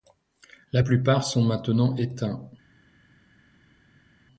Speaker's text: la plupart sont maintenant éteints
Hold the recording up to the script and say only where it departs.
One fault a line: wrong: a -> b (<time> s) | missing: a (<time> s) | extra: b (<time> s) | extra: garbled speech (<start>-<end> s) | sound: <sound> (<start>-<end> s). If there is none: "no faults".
no faults